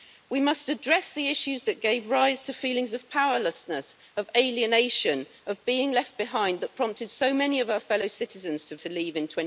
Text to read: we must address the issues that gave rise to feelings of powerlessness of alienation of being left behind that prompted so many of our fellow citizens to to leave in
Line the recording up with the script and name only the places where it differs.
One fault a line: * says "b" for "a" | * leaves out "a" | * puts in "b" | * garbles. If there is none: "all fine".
all fine